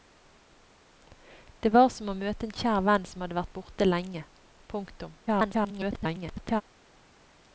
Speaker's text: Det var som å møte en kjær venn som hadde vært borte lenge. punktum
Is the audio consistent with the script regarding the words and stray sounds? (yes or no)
no